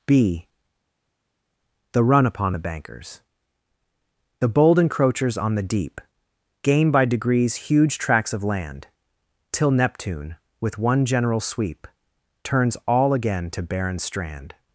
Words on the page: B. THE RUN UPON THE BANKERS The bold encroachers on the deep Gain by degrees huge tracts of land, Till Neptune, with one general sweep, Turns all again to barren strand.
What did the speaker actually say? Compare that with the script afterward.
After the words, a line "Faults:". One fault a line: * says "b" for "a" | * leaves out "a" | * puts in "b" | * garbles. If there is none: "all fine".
B. THE RUN UPON THE BANKERS The bold encroachers on the deep Gain by degrees huge tracts of land, Till Neptune, with one general sweep, Turns all again to barren strand.
Faults:
all fine